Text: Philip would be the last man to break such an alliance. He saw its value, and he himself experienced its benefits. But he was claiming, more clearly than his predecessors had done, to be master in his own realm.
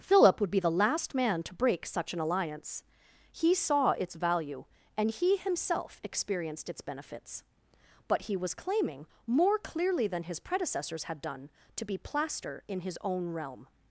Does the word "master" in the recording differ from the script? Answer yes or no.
yes